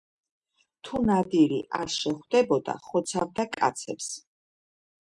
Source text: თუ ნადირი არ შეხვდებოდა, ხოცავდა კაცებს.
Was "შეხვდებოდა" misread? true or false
false